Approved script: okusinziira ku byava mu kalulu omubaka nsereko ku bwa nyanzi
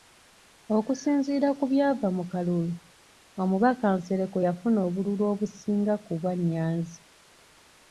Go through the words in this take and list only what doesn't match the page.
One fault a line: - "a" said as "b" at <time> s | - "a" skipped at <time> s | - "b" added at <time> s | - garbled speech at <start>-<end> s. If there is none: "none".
- "yafuna obululu obusinga" added at 4.5 s